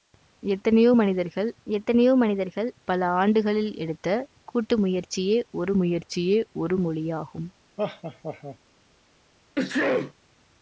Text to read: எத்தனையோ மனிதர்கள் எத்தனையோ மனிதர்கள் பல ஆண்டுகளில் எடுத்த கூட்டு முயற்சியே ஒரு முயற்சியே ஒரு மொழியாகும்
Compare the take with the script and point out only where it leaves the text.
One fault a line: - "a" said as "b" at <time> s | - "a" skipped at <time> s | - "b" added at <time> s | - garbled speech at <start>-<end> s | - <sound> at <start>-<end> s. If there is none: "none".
- laugh at 7.8-8.6 s
- sneeze at 9.6-10.1 s